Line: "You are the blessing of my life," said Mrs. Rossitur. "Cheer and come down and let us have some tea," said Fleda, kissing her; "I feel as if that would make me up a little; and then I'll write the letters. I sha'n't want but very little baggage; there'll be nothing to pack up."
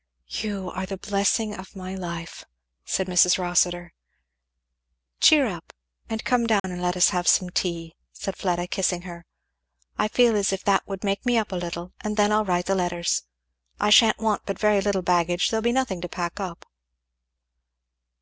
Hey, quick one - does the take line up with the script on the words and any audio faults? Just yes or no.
no